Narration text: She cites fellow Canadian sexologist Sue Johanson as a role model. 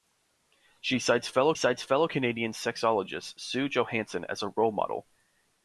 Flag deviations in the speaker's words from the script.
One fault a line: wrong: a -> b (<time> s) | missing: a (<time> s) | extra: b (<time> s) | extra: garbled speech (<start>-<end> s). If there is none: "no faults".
extra: cites fellow (1.5 s)